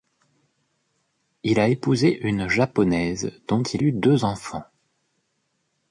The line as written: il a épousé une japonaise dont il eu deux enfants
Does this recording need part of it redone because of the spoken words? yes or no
no